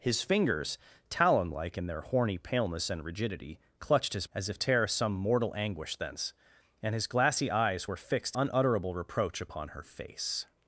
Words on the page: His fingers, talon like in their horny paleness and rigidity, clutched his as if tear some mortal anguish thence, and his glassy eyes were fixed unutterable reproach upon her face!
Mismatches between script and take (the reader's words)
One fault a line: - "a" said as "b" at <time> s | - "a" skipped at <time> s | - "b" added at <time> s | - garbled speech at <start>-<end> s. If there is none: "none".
none